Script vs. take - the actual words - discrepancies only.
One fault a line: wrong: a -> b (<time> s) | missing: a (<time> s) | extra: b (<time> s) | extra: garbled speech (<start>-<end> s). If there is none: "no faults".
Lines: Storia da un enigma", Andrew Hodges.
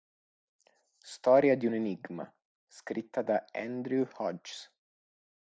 wrong: da -> di (1.6 s)
extra: scritta da (2.6 s)